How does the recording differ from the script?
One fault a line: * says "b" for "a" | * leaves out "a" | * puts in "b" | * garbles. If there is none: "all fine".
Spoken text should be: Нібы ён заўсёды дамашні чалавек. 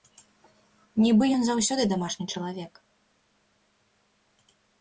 all fine